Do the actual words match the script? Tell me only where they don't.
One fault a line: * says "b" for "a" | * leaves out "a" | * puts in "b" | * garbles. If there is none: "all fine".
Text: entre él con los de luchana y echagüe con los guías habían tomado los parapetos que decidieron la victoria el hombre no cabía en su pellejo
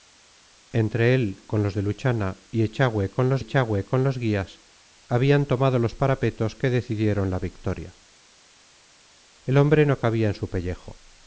* puts in "echagüe con los"